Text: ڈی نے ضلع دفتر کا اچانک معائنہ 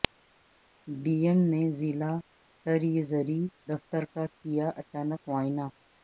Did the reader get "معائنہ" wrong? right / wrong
right